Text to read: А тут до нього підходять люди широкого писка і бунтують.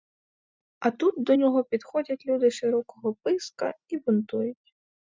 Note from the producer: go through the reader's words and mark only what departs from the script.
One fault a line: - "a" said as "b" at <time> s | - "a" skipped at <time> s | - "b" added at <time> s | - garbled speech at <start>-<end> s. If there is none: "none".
none